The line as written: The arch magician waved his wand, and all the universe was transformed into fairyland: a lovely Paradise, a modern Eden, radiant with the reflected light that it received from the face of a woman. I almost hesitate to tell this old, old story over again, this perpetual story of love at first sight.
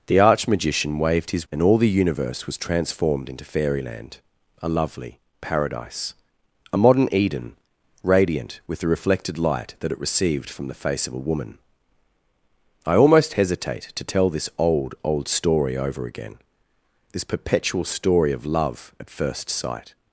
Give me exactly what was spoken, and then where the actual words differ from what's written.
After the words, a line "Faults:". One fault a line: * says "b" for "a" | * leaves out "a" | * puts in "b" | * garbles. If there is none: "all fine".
The arch magician waved his and all the universe was transformed into fairyland: a lovely Paradise, a modern Eden, radiant with the reflected light that it received from the face of a woman. I almost hesitate to tell this old, old story over again, this perpetual story of love at first sight.
Faults:
* leaves out "wand"